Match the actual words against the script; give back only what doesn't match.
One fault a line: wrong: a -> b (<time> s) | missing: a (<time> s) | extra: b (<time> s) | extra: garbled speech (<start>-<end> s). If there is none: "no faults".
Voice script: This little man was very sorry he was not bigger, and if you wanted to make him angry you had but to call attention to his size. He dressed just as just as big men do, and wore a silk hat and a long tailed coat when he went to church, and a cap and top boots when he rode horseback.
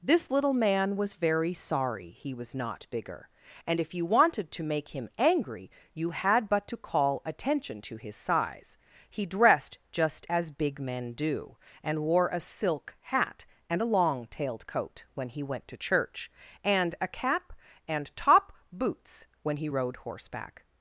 missing: just as (10.5 s)